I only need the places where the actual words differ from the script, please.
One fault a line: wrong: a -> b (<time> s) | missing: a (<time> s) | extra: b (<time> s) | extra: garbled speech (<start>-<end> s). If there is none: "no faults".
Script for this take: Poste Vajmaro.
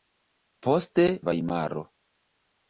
no faults